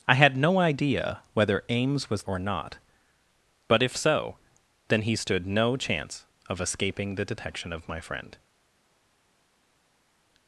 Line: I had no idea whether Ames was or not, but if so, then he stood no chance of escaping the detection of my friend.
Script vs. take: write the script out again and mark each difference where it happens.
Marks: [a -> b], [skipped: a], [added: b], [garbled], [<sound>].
I had no idea whether Ames was or not, but if so, then he stood no chance of escaping the detection of my friend.